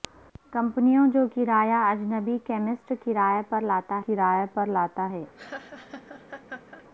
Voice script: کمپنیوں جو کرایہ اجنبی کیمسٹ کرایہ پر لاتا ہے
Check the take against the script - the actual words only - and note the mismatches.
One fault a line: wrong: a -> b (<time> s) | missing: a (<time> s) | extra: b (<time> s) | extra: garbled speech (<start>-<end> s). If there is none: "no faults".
extra: کرایہ پر لاتا (4.1 s)